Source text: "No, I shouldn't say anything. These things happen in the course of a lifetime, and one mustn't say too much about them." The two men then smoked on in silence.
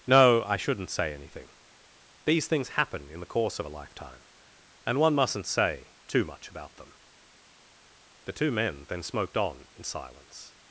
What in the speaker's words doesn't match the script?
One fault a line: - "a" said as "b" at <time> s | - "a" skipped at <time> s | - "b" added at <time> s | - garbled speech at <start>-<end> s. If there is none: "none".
none